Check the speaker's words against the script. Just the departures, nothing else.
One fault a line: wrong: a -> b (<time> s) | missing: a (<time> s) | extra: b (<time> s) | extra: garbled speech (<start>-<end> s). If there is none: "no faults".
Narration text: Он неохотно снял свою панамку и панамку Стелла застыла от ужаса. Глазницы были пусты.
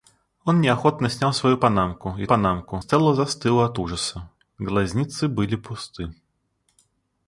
no faults